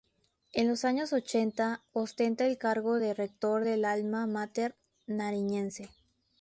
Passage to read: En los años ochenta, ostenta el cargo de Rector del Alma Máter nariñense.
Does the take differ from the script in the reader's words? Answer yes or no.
no